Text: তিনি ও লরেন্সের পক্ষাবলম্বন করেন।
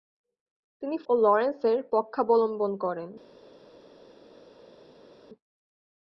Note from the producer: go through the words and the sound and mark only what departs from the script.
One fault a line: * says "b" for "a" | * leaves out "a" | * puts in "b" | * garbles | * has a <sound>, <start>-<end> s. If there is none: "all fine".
all fine